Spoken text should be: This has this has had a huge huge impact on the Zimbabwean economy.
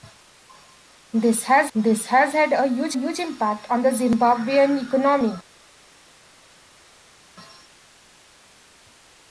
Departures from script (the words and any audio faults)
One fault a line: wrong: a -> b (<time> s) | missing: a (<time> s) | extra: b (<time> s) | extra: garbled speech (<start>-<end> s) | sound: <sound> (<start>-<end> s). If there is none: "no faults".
no faults